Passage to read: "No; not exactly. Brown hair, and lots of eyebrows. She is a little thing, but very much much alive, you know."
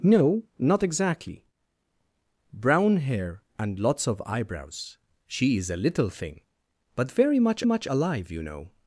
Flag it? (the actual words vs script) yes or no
no